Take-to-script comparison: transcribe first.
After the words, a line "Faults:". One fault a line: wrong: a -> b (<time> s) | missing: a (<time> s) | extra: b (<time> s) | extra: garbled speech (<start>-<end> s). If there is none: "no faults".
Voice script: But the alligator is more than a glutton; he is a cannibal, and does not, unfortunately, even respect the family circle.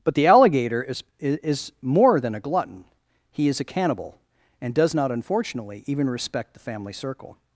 But the alligator is is more than a glutton; he is a cannibal, and does not, unfortunately, even respect the family circle.
Faults:
extra: is (1.2 s)